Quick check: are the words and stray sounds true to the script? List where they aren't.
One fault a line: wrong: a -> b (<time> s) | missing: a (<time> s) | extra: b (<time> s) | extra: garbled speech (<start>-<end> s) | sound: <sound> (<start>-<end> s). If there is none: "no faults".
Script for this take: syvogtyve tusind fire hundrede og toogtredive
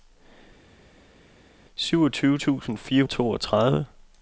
missing: hundrede (3.0 s)